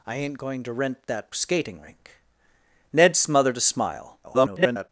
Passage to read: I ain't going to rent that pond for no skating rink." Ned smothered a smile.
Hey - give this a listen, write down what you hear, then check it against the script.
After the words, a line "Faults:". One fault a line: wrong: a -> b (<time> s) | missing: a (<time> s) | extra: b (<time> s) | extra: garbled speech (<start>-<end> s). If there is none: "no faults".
I ain't going to rent that skating rink." Ned smothered a smile. [garbled]
Faults:
missing: pond for no (1.3 s)
extra: garbled speech (4.2-4.9 s)